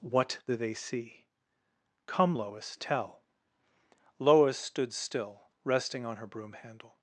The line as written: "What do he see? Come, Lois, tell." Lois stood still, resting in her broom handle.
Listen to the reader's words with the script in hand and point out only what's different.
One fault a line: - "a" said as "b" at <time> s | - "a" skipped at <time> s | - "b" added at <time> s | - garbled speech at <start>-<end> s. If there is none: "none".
- "he" said as "they" at 0.6 s
- "in" said as "on" at 6.0 s